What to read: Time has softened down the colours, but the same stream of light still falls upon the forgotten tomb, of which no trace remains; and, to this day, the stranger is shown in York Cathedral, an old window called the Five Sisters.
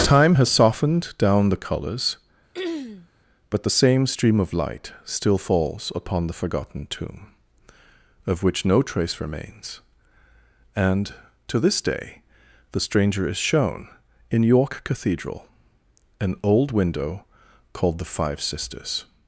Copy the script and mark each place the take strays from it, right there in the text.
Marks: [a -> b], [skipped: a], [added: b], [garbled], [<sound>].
Time has softened down the colours, [throat clearing] but the same stream of light still falls upon the forgotten tomb, of which no trace remains; and, to this day, the stranger is shown in York Cathedral, an old window called the Five Sisters.